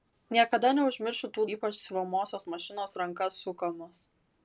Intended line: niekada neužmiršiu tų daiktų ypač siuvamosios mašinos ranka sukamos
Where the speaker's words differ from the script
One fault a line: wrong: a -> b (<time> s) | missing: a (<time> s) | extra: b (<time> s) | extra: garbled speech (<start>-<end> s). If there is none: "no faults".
missing: daiktų (1.4 s)